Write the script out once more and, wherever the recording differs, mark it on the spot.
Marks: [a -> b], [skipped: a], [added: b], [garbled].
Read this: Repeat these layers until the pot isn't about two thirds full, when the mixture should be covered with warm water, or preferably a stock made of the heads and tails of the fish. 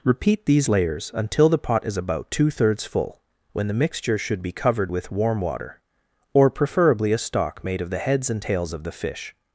Repeat these layers until the pot [isn't -> is] about two thirds full, when the mixture should be covered with warm water, or preferably a stock made of the heads and tails of the fish.